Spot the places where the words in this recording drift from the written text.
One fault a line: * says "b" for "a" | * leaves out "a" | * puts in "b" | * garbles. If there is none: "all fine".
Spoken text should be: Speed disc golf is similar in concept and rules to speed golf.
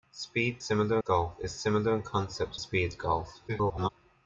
* says "similar" for "disc"
* leaves out "and rules to"
* garbles